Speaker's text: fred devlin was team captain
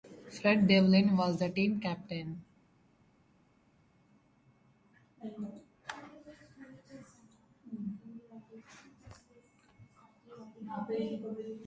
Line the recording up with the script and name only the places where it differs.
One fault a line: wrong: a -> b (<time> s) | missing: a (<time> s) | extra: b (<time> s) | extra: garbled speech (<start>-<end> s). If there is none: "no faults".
extra: the (1.4 s)